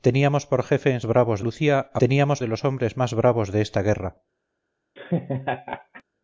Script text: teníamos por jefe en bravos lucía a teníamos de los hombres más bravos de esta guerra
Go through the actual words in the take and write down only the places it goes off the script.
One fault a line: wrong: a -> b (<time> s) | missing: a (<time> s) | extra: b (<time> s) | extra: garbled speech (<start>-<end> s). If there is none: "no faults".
no faults